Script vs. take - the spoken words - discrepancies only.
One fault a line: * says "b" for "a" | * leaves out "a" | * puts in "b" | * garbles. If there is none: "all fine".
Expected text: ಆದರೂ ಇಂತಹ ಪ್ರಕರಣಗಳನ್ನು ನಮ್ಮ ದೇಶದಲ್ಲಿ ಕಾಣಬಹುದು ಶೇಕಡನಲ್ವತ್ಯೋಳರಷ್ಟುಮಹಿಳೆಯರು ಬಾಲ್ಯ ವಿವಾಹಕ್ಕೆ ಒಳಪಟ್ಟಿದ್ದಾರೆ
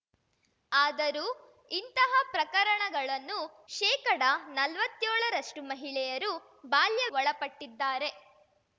* leaves out "ನಮ್ಮ ದೇಶದಲ್ಲಿ ಕಾಣಬಹುದು"
* leaves out "ವಿವಾಹಕ್ಕೆ"